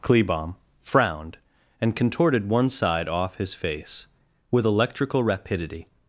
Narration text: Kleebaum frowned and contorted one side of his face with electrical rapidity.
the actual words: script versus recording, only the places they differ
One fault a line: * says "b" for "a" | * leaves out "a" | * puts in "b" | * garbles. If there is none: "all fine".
* says "off" for "of"